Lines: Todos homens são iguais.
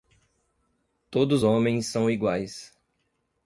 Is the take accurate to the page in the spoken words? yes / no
yes